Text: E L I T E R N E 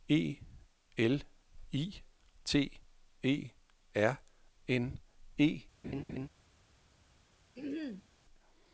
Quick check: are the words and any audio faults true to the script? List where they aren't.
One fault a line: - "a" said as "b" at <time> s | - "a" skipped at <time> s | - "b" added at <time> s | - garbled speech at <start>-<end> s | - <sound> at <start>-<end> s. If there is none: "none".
- laugh at 5.8-6.3 s
- throat clearing at 7.6-8.1 s